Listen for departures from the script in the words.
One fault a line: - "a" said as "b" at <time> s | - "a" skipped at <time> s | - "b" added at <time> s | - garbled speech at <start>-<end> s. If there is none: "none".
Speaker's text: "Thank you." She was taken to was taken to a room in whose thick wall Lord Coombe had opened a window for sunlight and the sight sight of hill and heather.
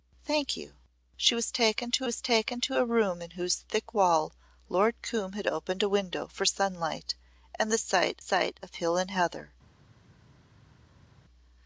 none